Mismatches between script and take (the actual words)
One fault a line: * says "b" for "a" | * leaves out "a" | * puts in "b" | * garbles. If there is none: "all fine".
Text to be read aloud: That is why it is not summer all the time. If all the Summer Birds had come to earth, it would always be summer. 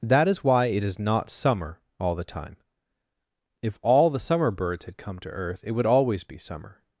all fine